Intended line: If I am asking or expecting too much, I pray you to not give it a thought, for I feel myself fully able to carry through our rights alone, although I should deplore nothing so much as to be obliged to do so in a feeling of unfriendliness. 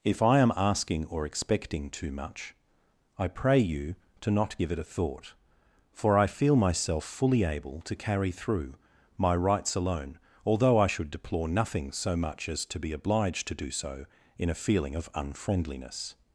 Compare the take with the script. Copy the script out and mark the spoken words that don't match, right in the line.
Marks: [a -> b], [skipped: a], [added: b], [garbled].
If I am asking or expecting too much, I pray you to not give it a thought, for I feel myself fully able to carry through [our -> my] rights alone, although I should deplore nothing so much as to be obliged to do so in a feeling of unfriendliness.